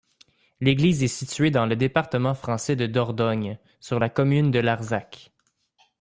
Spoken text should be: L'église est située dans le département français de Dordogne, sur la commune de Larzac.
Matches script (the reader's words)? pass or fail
pass